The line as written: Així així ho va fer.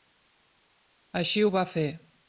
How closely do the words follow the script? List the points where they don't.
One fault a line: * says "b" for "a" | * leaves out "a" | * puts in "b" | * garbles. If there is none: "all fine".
* leaves out "així"